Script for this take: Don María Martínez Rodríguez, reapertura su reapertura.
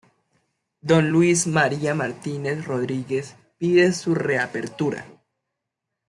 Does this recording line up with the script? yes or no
no